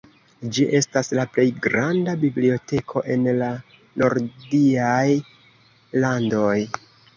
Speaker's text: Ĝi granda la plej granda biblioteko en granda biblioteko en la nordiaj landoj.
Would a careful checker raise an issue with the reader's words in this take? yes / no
yes